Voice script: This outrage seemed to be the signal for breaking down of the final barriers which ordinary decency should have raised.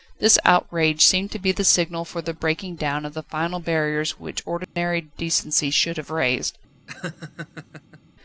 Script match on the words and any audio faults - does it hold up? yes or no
no